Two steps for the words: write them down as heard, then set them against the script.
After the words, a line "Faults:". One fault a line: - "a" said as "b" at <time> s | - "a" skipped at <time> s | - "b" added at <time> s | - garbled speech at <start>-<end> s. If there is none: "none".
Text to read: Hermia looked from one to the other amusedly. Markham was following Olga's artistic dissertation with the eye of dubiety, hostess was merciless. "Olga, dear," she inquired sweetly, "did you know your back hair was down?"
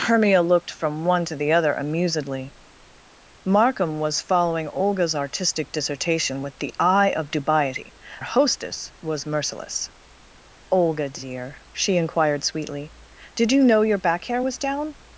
Hermia looked from one to the other amusedly. Markham was following Olga's artistic dissertation with the eye of dubiety, hostess was merciless. "Olga, dear," she inquired sweetly, "did you know your back hair was down?"
Faults:
none